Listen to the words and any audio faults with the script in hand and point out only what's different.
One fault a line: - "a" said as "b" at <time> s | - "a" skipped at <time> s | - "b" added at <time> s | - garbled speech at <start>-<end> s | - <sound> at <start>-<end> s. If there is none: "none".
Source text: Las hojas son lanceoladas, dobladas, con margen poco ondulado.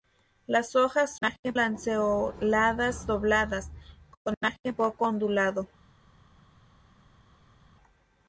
- "son" said as "margen" at 1.2 s